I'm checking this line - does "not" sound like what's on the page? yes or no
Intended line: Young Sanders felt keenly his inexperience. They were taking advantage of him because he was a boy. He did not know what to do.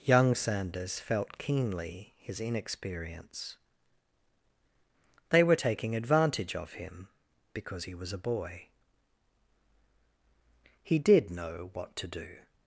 no